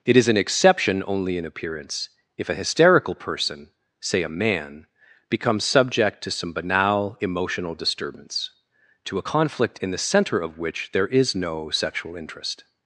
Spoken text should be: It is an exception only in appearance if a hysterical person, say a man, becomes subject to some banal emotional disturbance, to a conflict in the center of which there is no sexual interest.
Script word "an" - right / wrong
right